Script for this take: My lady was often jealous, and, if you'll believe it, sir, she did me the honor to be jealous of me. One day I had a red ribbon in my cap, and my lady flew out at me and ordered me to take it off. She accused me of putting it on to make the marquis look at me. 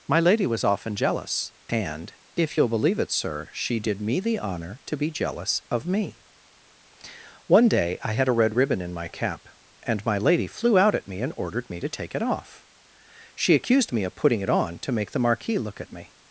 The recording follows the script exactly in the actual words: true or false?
true